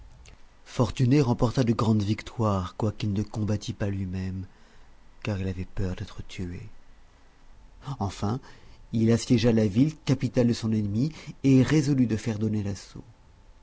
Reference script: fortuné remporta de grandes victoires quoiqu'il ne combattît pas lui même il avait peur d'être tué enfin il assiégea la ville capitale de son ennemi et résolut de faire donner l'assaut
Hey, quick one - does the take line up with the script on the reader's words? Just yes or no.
no